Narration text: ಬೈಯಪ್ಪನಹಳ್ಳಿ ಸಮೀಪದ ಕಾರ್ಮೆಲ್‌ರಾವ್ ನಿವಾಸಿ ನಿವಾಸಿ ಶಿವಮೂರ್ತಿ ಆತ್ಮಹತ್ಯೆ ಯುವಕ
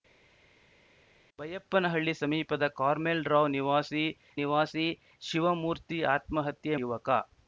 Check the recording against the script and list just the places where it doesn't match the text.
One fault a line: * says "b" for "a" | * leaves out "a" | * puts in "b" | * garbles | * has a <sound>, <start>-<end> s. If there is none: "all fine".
all fine